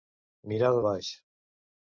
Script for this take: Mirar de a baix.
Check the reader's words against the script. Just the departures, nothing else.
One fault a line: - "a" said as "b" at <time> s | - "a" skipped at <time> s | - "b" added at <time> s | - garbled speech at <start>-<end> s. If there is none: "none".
none